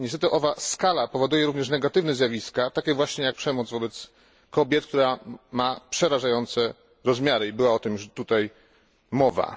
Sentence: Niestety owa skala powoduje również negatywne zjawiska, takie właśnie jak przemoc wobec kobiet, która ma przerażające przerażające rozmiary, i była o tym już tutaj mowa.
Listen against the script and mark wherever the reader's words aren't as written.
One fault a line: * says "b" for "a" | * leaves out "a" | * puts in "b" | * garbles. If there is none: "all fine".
* leaves out "przerażające"